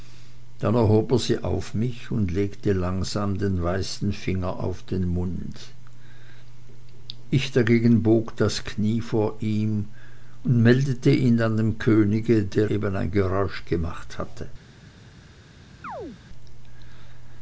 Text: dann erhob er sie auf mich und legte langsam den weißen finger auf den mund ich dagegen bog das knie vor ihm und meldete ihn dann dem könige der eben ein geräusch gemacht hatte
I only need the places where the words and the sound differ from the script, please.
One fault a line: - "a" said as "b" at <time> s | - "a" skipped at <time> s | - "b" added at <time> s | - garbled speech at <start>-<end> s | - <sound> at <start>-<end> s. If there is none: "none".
- chirp at 15.8-16.2 s